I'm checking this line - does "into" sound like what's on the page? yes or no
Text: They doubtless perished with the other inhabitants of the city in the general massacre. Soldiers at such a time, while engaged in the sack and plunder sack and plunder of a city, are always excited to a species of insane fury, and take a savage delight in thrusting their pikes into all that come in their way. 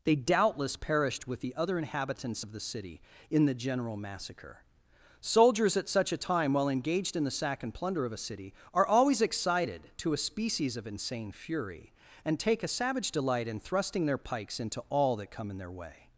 yes